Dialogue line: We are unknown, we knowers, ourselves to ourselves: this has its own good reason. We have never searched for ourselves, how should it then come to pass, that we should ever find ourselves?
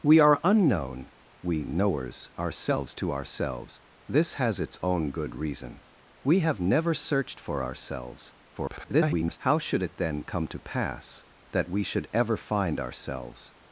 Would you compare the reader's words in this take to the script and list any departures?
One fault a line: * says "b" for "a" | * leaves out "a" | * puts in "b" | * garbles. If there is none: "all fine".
* garbles